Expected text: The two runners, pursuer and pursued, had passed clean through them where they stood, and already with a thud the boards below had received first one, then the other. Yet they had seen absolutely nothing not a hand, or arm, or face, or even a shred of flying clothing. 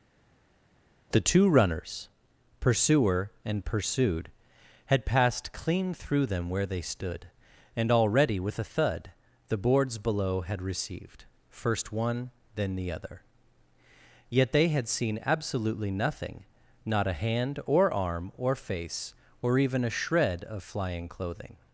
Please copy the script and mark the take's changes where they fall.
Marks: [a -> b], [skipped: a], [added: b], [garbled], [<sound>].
The two runners, pursuer and pursued, had passed clean through them where they stood, and already with a thud the boards below had received first one, then the other. Yet they had seen absolutely nothing not a hand, or arm, or face, or even a shred of flying clothing.